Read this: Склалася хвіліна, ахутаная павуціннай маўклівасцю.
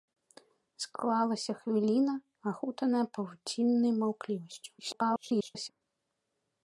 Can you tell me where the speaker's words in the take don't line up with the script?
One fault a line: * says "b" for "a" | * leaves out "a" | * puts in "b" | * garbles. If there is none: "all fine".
* garbles